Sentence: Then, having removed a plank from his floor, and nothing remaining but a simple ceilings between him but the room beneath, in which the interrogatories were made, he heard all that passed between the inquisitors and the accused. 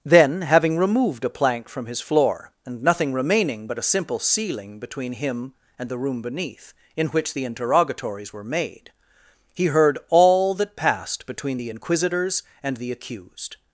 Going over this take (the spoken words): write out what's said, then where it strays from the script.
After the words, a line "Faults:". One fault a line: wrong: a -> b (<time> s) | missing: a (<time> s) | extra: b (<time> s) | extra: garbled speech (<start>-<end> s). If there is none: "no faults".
Then, having removed a plank from his floor, and nothing remaining but a simple ceiling between him and the room beneath, in which the interrogatories were made, he heard all that passed between the inquisitors and the accused.
Faults:
wrong: ceilings -> ceiling (4.2 s)
wrong: but -> and (5.8 s)